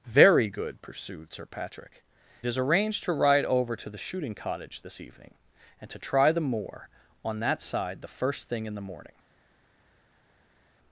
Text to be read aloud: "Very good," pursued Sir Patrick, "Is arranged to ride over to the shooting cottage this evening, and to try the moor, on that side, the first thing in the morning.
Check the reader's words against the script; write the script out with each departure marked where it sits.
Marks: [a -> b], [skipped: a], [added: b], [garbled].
"Very good," pursued Sir Patrick, "Is arranged to ride over to the shooting cottage this evening, and to try the moor, on that side, the first thing in the morning.